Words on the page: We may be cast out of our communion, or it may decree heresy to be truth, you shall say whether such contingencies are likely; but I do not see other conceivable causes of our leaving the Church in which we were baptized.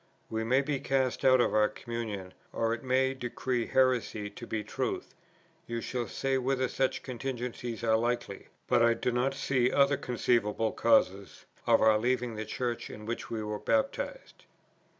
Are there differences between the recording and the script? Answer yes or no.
no